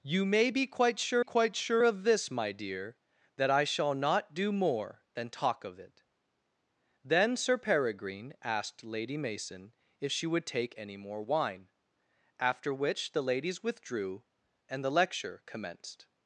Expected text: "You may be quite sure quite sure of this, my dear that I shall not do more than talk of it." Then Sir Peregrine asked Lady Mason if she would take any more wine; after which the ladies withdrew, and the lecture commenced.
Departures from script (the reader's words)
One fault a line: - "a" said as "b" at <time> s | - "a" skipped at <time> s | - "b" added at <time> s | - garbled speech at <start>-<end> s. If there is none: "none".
none